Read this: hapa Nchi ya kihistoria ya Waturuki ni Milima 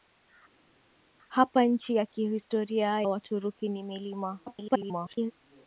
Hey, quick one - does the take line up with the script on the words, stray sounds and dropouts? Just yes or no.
no